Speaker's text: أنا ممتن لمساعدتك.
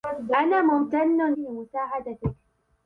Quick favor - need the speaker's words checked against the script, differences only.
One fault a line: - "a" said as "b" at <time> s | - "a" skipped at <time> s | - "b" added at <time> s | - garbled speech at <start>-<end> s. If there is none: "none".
none